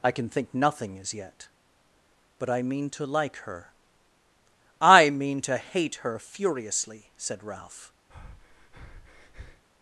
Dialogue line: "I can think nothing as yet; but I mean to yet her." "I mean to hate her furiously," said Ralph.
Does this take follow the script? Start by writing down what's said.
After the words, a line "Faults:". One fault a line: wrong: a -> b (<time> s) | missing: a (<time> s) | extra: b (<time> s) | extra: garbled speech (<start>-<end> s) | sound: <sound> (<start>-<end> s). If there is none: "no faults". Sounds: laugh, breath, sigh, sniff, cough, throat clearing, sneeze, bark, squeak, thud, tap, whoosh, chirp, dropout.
"I can think nothing as yet; but I mean to like her." "I mean to hate her furiously," said Ralph.
Faults:
wrong: yet -> like (3.0 s)
sound: breath (8.1-9.6 s)